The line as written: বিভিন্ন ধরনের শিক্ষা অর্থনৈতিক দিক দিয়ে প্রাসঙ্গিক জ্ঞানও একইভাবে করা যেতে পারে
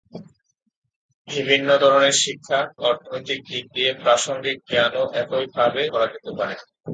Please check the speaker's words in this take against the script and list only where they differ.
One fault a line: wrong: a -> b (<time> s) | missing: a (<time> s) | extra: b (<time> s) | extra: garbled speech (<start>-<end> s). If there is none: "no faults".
no faults